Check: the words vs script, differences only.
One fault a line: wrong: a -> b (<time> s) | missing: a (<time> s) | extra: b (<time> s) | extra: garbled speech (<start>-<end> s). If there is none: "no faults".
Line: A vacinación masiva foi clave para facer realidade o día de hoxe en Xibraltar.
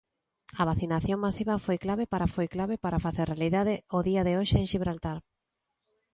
extra: foi clave para (2.3 s)